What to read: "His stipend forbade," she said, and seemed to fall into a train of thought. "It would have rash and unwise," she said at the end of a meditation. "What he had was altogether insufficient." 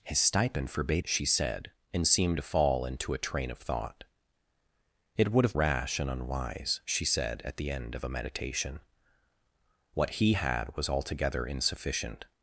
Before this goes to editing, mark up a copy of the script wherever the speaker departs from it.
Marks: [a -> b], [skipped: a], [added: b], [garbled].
"His stipend forbade," she said, and seemed to fall into a train of thought. "It would have rash and unwise," she said at the end of a meditation. "What he had was altogether insufficient."